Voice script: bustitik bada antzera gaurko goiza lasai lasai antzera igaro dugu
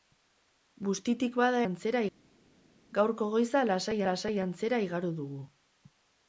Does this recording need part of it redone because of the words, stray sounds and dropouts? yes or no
no